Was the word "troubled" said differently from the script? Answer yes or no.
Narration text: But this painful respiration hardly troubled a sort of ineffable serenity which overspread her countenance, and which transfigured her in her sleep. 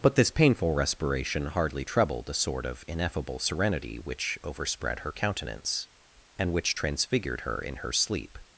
no